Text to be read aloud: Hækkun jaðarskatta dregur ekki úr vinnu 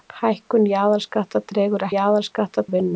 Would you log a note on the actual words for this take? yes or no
yes